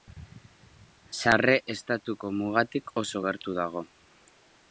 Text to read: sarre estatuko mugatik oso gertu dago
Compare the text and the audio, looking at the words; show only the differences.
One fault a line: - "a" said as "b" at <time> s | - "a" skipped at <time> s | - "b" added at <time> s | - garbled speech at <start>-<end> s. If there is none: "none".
none